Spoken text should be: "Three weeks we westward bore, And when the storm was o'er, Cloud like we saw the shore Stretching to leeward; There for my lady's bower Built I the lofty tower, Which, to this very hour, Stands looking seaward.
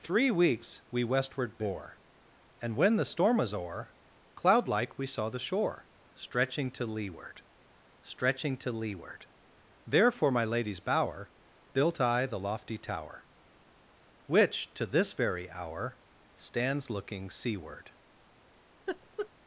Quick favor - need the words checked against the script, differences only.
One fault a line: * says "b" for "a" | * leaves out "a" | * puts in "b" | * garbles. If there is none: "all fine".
* puts in "Stretching to leeward"